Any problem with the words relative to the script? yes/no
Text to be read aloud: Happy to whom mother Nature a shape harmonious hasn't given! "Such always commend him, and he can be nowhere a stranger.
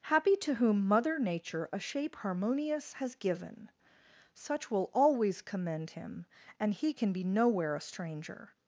yes